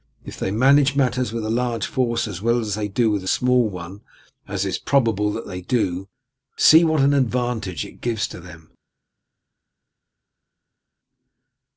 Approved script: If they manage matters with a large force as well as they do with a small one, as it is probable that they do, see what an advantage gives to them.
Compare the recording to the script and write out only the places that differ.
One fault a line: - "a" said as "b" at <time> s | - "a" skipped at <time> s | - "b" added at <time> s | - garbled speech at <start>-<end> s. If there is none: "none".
- "it" added at 7.8 s